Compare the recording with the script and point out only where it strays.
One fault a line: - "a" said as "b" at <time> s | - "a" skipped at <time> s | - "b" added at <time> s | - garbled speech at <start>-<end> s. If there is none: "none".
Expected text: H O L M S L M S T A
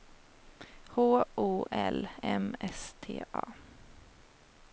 - "L M S" skipped at 2.9 s